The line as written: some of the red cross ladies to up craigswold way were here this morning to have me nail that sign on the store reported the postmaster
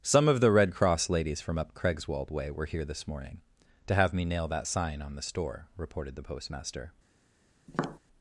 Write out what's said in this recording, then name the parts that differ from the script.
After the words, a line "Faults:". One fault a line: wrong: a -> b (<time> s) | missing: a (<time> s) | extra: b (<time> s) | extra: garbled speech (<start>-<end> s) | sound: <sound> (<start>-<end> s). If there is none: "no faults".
some of the red cross ladies from up craigswold way were here this morning to have me nail that sign on the store reported the postmaster
Faults:
wrong: to -> from (1.4 s)
sound: tap (7.7-8.0 s)